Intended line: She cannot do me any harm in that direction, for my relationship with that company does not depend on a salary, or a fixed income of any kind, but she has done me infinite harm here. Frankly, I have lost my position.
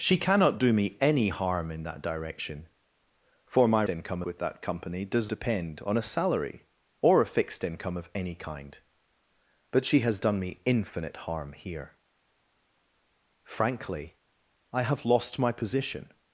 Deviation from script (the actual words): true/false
true